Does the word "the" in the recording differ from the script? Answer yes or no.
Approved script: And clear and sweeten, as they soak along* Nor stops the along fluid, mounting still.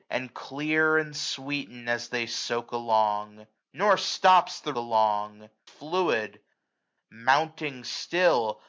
no